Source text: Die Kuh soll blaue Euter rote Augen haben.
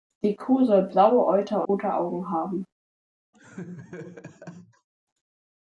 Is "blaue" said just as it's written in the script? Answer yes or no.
yes